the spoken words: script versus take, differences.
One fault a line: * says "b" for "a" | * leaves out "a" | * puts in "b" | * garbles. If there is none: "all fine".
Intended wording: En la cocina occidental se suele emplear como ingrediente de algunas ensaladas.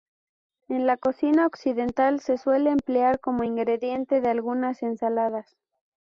all fine